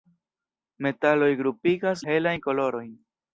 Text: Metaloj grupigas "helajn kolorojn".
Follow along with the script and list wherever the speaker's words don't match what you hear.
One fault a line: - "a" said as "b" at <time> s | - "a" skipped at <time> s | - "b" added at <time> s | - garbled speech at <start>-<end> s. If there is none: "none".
none